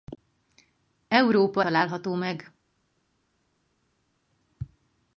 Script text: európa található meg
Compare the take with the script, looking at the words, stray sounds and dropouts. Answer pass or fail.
pass